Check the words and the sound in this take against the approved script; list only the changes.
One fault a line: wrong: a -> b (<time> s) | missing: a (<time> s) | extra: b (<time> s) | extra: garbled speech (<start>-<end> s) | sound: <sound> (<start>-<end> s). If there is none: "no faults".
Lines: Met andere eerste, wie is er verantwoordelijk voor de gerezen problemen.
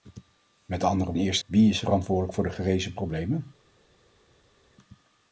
no faults